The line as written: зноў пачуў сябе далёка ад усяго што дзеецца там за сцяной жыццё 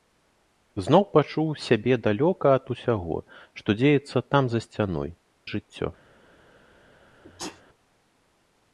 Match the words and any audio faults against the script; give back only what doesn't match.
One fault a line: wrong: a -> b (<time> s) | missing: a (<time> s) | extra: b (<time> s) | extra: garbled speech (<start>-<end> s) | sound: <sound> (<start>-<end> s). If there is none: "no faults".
sound: sneeze (7.2-7.6 s)